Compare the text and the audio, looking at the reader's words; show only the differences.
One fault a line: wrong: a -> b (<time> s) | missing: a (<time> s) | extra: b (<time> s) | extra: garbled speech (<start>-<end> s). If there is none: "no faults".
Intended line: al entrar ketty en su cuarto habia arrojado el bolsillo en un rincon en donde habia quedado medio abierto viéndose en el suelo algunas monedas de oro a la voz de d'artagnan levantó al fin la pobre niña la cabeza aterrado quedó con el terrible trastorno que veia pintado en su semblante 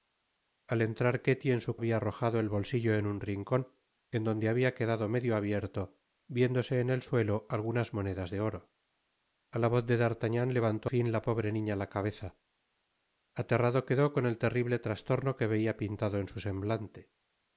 missing: cuarto (1.8 s)
missing: al (10.9 s)